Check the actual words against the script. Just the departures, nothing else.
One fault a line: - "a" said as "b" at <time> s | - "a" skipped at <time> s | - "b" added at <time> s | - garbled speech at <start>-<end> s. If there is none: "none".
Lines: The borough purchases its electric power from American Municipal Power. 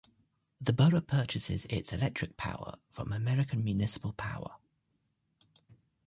none